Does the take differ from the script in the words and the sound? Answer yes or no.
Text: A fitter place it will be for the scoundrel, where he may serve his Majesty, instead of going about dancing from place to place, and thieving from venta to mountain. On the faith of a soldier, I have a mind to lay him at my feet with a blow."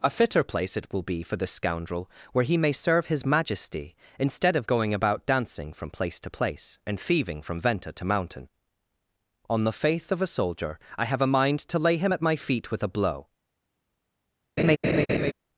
yes